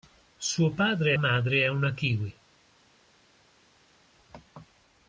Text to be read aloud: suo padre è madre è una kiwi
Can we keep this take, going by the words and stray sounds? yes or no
yes